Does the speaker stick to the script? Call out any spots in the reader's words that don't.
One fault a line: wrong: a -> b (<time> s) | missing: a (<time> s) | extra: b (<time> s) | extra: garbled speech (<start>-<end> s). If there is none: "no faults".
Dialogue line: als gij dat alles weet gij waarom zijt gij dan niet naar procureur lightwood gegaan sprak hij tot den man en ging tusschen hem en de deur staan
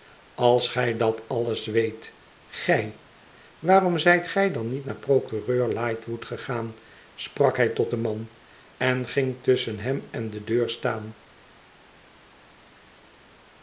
no faults